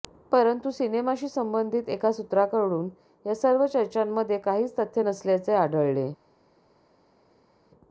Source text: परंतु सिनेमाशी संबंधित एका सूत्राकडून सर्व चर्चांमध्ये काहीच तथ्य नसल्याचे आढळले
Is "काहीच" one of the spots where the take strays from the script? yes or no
no